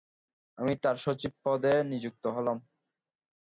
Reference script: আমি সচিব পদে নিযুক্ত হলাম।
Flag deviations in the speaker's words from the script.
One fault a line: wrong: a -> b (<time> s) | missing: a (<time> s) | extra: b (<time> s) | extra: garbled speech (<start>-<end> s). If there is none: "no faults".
extra: তার (0.8 s)